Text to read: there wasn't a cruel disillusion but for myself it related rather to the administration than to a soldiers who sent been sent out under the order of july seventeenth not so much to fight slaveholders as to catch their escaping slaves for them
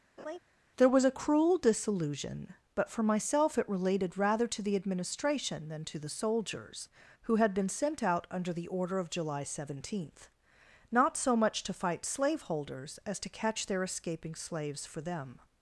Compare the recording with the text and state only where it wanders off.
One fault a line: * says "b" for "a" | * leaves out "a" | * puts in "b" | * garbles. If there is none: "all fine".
* says "was" for "wasn't"
* says "the" for "a"
* says "had" for "sent"